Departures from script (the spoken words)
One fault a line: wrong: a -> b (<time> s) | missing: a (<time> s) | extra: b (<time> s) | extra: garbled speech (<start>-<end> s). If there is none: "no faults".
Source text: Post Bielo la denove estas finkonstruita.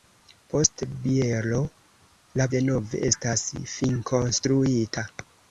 no faults